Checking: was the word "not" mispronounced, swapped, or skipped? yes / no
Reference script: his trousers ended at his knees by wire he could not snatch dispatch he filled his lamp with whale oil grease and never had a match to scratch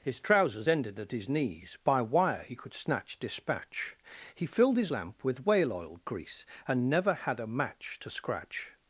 yes